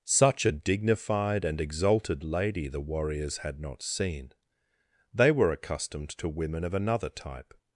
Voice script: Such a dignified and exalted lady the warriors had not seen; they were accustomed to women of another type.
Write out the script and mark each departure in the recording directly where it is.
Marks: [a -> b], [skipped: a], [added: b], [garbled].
Such a dignified and exalted lady the warriors had not seen; they were accustomed to women of another type.